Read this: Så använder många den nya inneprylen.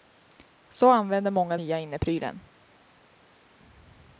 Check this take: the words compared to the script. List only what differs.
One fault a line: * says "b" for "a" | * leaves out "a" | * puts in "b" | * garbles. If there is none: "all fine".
* leaves out "den"